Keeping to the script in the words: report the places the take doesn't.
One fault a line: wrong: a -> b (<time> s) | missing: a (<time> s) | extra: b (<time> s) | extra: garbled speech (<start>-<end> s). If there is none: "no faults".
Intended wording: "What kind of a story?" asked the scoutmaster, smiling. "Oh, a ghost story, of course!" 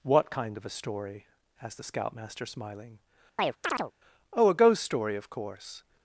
no faults